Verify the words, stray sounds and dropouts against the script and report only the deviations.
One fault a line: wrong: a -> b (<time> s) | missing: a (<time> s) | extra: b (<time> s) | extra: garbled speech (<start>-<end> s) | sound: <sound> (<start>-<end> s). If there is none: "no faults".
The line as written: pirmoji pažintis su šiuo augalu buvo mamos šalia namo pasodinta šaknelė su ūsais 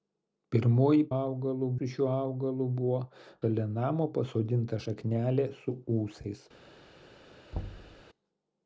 wrong: pažintis -> augalu (1.2 s)
missing: mamos (3.0 s)
sound: thud (7.5-8.0 s)